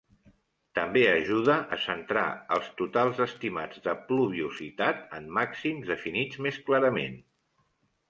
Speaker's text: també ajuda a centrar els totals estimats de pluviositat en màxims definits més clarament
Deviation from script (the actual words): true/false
false